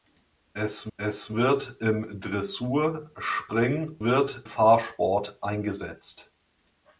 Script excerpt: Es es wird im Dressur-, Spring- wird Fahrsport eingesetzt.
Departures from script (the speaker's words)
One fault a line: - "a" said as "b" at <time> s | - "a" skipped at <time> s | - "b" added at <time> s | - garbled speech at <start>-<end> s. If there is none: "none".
none